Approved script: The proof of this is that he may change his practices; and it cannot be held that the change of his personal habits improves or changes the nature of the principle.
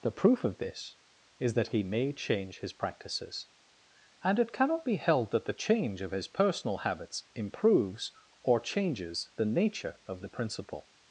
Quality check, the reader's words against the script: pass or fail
pass